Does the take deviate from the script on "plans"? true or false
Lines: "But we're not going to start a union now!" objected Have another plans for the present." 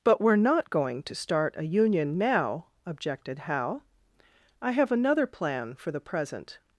true